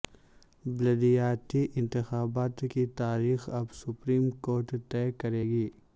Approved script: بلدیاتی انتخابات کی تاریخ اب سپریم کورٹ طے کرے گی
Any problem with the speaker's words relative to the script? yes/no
no